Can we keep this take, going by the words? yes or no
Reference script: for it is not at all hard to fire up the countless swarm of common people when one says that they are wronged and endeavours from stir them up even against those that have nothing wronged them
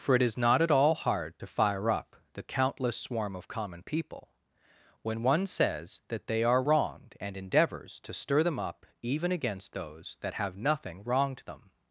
no